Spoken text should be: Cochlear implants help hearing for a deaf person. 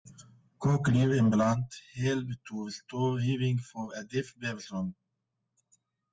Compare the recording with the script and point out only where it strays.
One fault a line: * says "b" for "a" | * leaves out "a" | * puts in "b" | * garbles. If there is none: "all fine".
* puts in "to restore"